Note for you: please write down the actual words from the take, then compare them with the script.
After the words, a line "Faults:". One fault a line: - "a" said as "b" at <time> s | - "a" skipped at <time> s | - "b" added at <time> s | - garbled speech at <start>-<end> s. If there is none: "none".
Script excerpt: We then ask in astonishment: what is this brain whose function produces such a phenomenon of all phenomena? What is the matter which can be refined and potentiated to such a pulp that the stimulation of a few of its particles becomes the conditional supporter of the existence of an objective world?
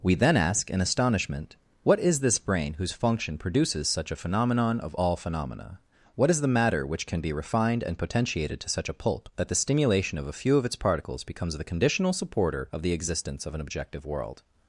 We then ask in astonishment: what is this brain whose function produces such a phenomenon of all phenomena? What is the matter which can be refined and potentiated to such a pulp that the stimulation of a few of its particles becomes the conditional supporter of the existence of an objective world?
Faults:
none